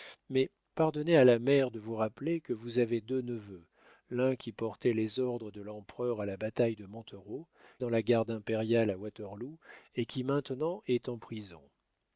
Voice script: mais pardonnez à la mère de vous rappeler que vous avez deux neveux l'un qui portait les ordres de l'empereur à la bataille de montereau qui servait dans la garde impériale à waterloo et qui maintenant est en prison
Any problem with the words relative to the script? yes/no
yes